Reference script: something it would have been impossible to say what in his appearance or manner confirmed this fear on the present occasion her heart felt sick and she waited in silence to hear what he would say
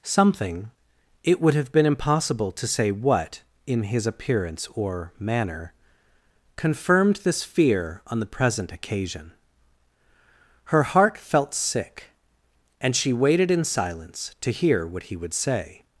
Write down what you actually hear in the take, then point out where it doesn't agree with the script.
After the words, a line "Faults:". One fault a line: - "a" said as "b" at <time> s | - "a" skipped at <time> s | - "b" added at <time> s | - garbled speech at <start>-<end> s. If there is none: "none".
something it would have been impossible to say what in his appearance or manner confirmed this fear on the present occasion her heart felt sick and she waited in silence to hear what he would say
Faults:
none